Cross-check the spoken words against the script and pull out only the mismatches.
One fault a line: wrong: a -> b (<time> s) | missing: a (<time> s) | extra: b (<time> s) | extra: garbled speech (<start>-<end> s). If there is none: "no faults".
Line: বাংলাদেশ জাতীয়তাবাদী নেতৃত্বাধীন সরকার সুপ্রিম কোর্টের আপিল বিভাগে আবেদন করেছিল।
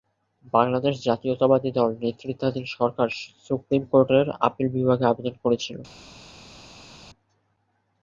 extra: দল (1.7 s)